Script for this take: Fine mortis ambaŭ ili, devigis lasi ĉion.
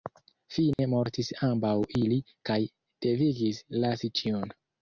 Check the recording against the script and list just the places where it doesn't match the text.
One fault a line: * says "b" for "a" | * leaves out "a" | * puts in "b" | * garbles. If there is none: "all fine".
* puts in "kaj"